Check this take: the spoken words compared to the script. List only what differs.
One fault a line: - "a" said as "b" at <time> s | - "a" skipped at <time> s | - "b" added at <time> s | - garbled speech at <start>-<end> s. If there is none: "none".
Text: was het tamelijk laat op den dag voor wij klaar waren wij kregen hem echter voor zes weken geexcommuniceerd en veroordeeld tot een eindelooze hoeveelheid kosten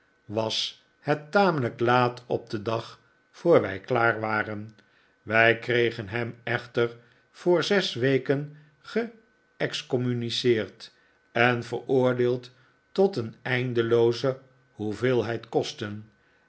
none